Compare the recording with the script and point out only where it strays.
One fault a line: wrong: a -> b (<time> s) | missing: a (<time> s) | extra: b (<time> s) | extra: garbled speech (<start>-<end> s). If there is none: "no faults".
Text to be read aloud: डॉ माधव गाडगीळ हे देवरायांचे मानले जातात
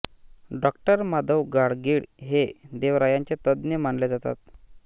extra: तज्ज्ञ (3.5 s)